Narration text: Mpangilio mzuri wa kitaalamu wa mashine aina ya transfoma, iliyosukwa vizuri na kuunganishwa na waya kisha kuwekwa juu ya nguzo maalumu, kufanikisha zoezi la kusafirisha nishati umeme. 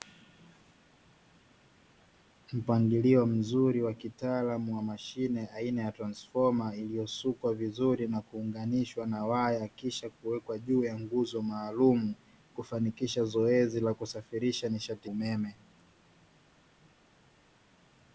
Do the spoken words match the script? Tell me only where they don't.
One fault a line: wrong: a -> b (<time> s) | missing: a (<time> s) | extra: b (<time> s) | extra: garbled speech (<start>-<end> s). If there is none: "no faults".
no faults